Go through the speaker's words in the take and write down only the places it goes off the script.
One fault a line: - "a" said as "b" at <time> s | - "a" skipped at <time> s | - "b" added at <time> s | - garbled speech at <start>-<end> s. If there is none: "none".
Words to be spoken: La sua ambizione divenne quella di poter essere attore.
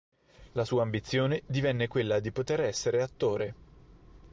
none